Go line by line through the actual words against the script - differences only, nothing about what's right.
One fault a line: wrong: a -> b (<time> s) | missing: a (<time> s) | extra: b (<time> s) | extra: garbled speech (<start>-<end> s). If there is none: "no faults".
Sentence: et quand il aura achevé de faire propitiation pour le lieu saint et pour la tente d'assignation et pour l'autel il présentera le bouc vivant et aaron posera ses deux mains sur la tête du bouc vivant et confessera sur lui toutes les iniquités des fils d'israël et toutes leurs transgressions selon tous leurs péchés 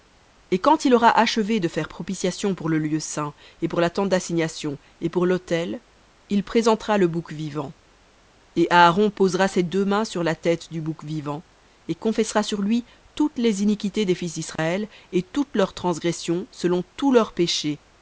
no faults